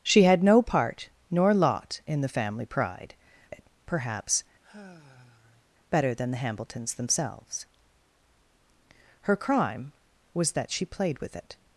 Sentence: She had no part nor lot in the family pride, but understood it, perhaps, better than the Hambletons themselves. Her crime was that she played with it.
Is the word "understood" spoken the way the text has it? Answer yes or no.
no